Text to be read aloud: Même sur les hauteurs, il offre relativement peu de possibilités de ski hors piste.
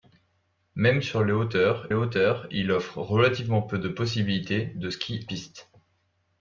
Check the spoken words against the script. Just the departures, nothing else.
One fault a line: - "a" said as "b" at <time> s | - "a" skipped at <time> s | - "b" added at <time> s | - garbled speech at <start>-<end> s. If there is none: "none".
- "hauteurs" added at 1.9 s
- "hors" skipped at 5.2 s